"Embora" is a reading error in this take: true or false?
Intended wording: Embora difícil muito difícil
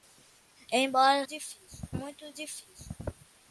false